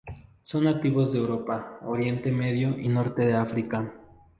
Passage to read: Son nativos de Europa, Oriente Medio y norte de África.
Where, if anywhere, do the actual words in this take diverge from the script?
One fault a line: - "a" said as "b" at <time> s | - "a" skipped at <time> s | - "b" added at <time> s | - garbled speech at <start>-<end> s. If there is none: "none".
none